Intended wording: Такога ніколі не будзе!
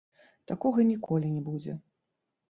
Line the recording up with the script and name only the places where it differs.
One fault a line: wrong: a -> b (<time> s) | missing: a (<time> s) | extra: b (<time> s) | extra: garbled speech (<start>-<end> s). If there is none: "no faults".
no faults